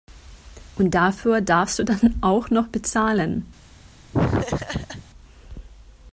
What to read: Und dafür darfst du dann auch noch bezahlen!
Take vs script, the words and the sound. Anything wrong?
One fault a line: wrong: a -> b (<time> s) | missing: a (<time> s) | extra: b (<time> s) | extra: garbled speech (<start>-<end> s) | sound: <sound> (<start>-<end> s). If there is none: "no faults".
sound: laugh (4.1-5.0 s)